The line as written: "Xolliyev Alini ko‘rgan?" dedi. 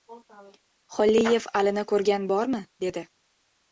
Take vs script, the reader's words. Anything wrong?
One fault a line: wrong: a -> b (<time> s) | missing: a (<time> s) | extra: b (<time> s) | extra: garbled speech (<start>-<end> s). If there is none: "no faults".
extra: bormi (2.3 s)